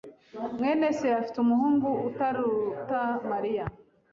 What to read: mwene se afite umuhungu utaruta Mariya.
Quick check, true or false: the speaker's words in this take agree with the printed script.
true